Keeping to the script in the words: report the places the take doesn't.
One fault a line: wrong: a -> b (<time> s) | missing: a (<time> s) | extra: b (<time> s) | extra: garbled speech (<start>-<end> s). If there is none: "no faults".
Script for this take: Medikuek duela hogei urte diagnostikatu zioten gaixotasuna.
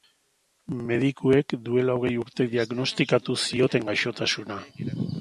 no faults